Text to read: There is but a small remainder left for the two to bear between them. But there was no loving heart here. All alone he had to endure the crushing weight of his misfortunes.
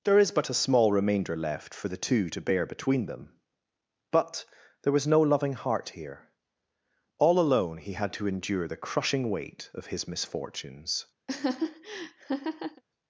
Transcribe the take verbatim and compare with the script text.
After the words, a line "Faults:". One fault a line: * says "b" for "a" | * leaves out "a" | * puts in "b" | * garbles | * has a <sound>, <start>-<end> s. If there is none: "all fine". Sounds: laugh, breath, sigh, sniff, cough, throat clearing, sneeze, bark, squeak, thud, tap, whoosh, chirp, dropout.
There is but a small remainder left for the two to bear between them. But there was no loving heart here. All alone he had to endure the crushing weight of his misfortunes.
Faults:
* has a laugh, 11.3-12.8 s